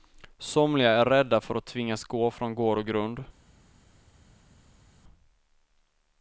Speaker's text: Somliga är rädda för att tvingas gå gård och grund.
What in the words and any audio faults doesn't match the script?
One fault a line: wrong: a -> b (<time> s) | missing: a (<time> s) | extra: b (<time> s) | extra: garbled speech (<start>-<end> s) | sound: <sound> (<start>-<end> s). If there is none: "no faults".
extra: från (2.3 s)